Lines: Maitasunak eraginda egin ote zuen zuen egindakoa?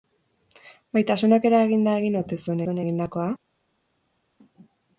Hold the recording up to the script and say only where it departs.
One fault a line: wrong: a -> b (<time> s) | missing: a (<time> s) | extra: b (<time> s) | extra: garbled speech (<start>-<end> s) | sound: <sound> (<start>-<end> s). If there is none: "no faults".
no faults